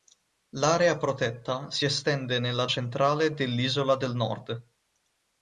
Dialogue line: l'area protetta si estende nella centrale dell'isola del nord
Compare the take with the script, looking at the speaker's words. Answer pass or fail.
pass